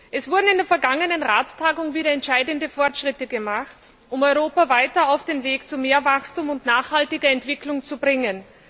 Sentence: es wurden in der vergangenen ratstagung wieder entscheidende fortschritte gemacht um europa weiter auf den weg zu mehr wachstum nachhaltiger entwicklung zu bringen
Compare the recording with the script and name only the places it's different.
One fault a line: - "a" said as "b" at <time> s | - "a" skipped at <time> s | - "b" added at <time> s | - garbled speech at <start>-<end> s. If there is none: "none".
- "und" added at 6.5 s